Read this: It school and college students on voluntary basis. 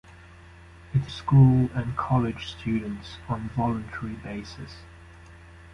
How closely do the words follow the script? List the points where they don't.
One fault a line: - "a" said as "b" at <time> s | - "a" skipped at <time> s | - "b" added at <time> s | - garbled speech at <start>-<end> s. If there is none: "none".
none